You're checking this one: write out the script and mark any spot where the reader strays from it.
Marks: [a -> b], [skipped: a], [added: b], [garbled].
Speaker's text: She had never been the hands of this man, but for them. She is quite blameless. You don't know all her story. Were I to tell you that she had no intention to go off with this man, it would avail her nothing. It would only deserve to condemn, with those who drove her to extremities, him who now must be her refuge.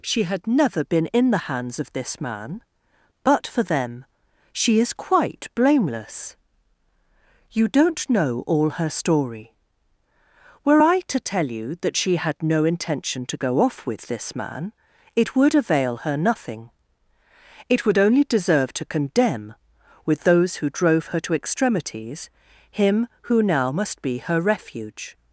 She had never been [added: in] the hands of this man, but for them. She is quite blameless. You don't know all her story. Were I to tell you that she had no intention to go off with this man, it would avail her nothing. It would only deserve to condemn, with those who drove her to extremities, him who now must be her refuge.